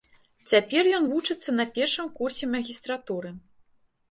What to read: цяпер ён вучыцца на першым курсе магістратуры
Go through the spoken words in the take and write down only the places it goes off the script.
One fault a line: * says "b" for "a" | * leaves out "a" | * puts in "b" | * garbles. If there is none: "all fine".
all fine